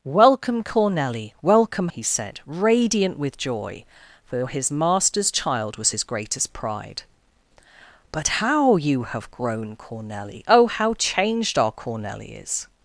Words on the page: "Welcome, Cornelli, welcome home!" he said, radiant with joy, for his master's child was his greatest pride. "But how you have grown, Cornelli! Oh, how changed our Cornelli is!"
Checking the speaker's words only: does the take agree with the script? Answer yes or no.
no